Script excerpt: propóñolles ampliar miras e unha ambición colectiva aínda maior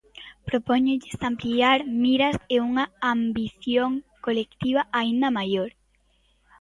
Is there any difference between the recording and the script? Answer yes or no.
no